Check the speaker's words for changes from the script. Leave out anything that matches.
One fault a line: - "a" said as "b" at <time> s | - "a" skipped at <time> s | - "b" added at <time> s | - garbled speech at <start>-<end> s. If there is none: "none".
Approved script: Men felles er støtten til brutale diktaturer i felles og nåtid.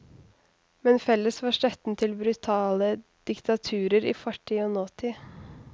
- "er" said as "var" at 1.4 s
- "felles" said as "fortid" at 4.2 s